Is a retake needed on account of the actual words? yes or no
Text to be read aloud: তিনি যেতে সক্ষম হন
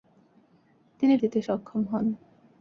no